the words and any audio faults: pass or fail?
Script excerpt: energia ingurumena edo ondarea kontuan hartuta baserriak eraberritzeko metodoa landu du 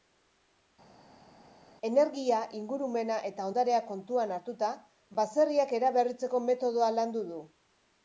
fail